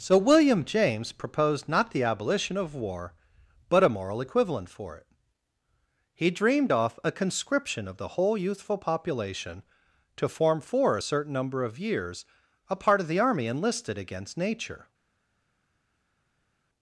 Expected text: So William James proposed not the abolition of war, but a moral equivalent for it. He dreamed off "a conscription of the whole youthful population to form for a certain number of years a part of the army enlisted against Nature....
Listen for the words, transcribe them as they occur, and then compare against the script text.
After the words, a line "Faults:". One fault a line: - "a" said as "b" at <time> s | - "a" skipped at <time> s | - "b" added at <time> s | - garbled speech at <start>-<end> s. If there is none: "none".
So William James proposed not the abolition of war, but a moral equivalent for it. He dreamed off "a conscription of the whole youthful population to form for a certain number of years a part of the army enlisted against Nature....
Faults:
none